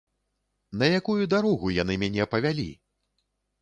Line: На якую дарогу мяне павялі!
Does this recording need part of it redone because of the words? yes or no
yes